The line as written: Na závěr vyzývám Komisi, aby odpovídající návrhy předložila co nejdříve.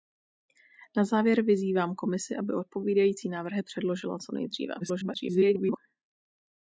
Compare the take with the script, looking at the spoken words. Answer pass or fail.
fail